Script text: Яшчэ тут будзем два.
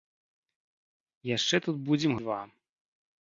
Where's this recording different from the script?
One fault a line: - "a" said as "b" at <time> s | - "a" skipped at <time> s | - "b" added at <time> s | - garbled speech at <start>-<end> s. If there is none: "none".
none